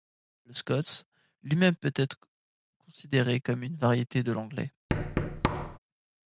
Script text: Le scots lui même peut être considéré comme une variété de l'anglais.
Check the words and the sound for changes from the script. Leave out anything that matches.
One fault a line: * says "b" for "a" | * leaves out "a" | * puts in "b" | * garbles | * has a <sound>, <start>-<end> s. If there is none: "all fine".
* has a thud, 4.9-5.8 s